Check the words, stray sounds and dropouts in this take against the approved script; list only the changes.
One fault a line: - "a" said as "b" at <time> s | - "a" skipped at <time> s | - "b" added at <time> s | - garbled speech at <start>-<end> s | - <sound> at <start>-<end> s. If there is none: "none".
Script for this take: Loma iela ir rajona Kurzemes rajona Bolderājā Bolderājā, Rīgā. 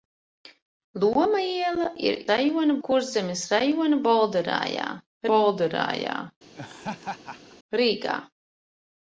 - laugh at 6.5-7.6 s